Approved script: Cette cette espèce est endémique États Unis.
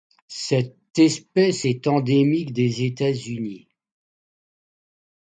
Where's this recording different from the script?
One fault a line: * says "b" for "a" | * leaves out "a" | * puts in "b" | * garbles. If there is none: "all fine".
* leaves out "cette"
* puts in "des"